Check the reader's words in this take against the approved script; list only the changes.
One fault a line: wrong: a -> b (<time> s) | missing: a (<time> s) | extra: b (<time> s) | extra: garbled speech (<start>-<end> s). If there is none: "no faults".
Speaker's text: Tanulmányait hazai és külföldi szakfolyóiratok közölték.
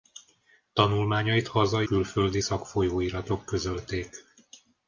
missing: és (1.9 s)